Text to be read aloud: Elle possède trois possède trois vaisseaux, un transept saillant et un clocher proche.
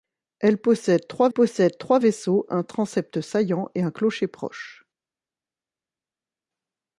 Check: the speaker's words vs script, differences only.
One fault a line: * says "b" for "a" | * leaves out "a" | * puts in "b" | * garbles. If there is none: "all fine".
all fine